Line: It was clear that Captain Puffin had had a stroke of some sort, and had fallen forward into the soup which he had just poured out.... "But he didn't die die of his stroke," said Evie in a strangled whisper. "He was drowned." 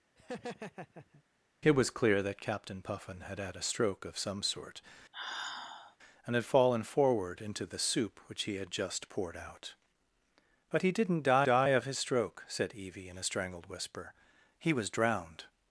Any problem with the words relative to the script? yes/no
no